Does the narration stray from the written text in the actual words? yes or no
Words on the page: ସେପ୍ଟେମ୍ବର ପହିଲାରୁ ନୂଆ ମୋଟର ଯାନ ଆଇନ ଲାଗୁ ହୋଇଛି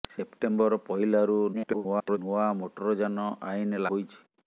yes